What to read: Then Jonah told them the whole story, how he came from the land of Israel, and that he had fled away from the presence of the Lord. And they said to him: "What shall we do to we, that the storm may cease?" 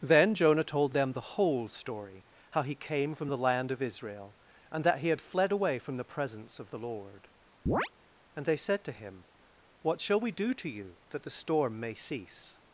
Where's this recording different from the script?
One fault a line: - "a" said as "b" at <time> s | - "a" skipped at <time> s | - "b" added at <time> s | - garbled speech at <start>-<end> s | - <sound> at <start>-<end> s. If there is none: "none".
- chirp at 7.7-7.9 s
- "we" said as "you" at 10.7 s